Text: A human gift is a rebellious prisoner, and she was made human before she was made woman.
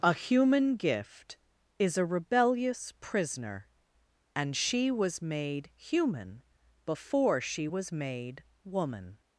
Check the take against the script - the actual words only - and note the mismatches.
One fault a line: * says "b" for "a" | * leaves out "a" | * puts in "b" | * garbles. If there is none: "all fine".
all fine